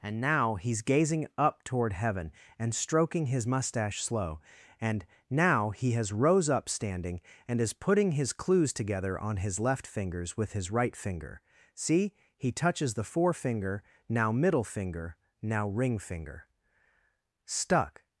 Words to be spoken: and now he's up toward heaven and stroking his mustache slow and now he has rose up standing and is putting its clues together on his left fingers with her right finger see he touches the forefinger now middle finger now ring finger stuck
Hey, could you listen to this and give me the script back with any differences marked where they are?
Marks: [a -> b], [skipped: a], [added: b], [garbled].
and now he's [added: gazing] up toward heaven and stroking his mustache slow and now he has rose up standing and is putting [its -> his] clues together on his left fingers with [her -> his] right finger see he touches the forefinger now middle finger now ring finger stuck